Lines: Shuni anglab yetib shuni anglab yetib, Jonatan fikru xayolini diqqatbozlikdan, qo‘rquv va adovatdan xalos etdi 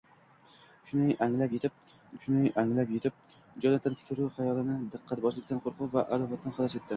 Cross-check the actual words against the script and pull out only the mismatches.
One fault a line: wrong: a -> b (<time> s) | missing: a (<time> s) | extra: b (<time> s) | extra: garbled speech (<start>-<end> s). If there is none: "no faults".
no faults